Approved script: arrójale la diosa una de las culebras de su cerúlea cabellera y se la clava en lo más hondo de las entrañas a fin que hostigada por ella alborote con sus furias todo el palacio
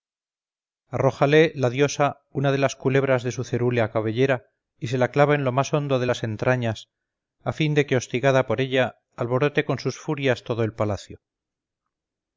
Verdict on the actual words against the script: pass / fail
fail